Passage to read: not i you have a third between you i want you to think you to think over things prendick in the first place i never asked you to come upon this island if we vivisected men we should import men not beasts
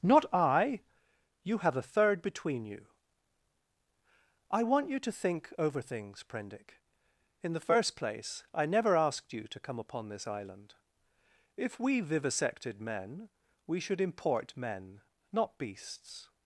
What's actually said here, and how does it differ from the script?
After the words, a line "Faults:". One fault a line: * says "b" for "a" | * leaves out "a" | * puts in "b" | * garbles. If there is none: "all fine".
not i you have a third between you i want you to think over things prendick in the first place i never asked you to come upon this island if we vivisected men we should import men not beasts
Faults:
* leaves out "you to think"